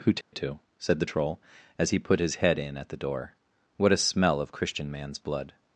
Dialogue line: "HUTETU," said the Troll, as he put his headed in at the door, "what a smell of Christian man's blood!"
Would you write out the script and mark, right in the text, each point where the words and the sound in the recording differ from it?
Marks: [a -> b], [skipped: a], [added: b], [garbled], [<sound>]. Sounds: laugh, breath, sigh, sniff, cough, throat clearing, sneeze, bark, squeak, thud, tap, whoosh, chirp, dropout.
"HUTETU," [dropout] said the Troll, as he put his [headed -> head] in at the door, "what a smell of Christian man's blood!"